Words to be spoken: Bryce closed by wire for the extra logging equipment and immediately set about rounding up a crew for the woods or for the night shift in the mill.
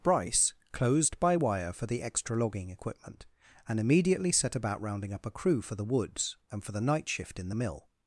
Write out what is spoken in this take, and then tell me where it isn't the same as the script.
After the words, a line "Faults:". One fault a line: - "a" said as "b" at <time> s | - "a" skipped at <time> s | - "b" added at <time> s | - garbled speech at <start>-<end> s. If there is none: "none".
Bryce closed by wire for the extra logging equipment and immediately set about rounding up a crew for the woods and for the night shift in the mill.
Faults:
- "or" said as "and" at 6.5 s